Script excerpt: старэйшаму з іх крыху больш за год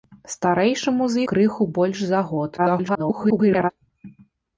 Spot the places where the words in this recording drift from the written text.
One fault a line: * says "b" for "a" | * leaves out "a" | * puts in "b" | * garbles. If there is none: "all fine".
* leaves out "іх"
* garbles